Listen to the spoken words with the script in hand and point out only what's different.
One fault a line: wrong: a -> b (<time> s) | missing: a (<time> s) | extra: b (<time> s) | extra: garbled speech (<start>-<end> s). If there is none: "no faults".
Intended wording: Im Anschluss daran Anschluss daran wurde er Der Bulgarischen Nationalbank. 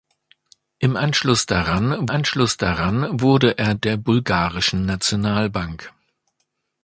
no faults